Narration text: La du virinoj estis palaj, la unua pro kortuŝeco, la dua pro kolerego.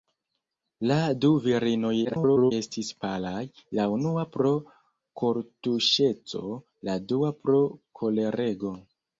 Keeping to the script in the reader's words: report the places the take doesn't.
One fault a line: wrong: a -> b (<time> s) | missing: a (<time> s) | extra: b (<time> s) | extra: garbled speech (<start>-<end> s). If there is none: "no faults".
extra: garbled speech (2.0-2.5 s)